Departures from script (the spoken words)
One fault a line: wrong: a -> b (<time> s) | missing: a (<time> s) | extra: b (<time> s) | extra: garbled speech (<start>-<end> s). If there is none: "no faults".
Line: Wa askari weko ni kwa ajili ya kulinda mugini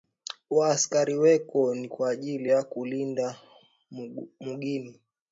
no faults